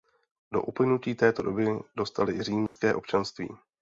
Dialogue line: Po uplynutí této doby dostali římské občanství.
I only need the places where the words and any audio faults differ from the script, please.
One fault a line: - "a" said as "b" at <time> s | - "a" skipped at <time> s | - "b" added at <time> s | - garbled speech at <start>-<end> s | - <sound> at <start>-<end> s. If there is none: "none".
- dropout at 2.7-2.8 s